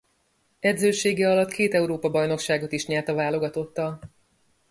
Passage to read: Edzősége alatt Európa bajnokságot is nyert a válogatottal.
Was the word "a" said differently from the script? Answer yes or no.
no